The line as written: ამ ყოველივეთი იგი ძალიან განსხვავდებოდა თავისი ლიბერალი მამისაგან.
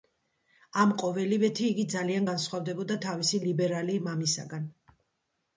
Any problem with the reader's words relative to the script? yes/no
no